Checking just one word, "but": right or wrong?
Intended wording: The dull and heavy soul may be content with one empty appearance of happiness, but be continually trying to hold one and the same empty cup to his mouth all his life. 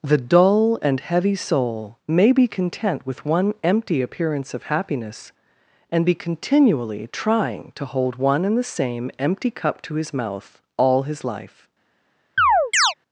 wrong